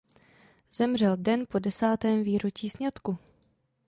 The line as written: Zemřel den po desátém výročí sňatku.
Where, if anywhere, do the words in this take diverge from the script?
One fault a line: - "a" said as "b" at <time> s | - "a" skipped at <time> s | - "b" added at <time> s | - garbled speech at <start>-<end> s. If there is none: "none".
none